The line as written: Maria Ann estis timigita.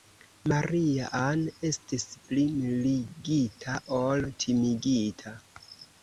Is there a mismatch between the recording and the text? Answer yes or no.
yes